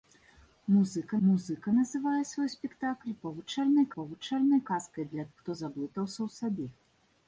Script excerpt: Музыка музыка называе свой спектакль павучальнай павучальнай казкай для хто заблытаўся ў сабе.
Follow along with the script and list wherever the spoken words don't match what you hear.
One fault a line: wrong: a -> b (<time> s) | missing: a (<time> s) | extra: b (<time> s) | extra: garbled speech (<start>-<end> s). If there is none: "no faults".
no faults